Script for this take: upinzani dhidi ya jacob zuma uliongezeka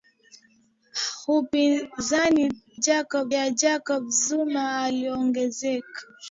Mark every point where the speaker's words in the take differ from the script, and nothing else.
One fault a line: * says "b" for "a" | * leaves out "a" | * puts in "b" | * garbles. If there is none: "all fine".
* says "jacob" for "dhidi"